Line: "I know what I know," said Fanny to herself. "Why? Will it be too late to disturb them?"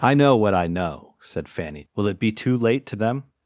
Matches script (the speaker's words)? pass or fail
fail